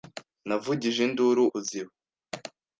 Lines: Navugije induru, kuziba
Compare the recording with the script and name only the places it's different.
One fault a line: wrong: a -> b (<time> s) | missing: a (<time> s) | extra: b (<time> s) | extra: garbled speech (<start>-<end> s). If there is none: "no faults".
no faults